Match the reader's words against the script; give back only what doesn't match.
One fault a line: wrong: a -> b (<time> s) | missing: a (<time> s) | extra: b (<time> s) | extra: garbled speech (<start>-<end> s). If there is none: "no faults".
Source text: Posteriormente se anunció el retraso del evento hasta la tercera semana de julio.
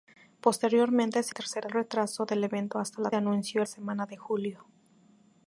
wrong: anunció -> tercera (1.3 s)
wrong: tercera -> anunció (3.1 s)